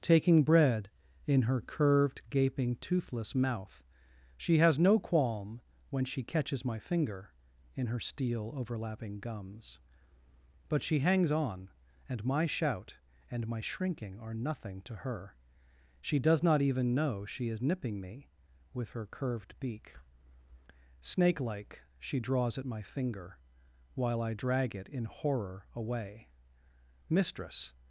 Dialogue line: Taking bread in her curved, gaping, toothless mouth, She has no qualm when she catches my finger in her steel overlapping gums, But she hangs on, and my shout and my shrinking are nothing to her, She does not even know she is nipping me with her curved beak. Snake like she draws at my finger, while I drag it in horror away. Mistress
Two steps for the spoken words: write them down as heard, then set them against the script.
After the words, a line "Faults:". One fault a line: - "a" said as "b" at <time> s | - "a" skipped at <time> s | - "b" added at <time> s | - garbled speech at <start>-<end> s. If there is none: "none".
Taking bread in her curved, gaping, toothless mouth, She has no qualm when she catches my finger in her steel overlapping gums, But she hangs on, and my shout and my shrinking are nothing to her, She does not even know she is nipping me with her curved beak. Snake like she draws at my finger, while I drag it in horror away. Mistress
Faults:
none